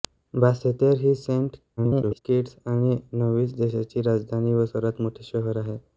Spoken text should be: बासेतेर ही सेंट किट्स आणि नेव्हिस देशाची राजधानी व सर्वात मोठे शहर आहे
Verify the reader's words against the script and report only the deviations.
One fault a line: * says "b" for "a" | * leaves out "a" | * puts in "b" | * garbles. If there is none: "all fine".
* garbles